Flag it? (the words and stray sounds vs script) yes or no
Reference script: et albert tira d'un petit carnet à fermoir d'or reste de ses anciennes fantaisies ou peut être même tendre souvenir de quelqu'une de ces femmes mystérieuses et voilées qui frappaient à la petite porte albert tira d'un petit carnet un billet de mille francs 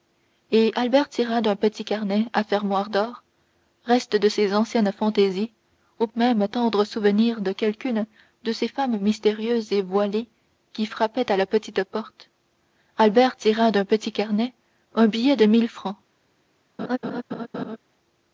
yes